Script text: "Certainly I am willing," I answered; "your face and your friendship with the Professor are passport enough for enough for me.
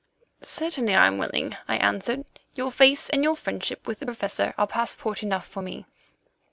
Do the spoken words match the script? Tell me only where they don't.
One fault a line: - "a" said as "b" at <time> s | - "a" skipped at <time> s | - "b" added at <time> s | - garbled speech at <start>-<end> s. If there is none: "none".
- "enough for" skipped at 5.6 s